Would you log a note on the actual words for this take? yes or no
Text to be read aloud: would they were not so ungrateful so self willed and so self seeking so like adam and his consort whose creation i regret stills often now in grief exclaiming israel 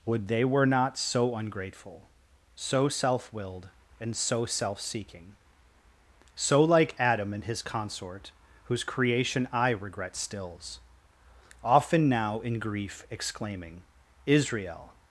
no